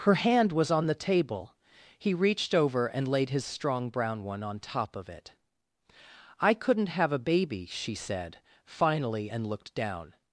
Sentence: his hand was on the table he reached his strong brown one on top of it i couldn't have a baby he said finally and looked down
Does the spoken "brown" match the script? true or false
true